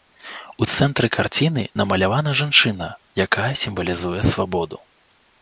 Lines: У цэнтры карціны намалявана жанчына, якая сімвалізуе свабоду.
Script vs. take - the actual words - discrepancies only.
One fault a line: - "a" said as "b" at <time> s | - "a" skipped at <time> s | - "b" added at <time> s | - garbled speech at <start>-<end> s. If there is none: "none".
none